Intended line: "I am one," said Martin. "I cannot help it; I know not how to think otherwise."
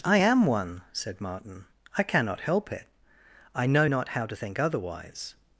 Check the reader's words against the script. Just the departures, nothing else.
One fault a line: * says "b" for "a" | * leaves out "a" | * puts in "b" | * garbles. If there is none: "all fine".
all fine